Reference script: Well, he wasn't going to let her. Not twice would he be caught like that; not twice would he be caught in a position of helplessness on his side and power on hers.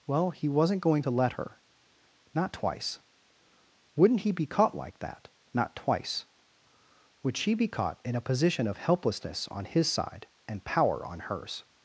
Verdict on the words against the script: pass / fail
fail